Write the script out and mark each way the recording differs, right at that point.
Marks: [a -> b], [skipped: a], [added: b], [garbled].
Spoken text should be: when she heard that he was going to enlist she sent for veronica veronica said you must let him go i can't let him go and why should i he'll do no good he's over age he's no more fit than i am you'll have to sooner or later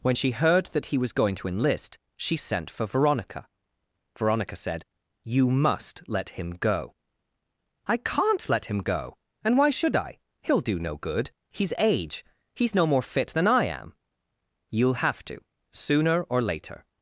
when she heard that he was going to enlist she sent for veronica veronica said you must let him go i can't let him go and why should i he'll do no good he's [skipped: over] age he's no more fit than i am you'll have to sooner or later